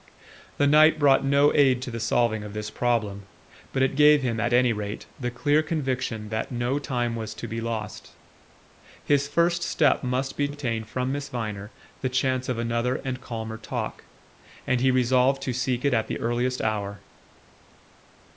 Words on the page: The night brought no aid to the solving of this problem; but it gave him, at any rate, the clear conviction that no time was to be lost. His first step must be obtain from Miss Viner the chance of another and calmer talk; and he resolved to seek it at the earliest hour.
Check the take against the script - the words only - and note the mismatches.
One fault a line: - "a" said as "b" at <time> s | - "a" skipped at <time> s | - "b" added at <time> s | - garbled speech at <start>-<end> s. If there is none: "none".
none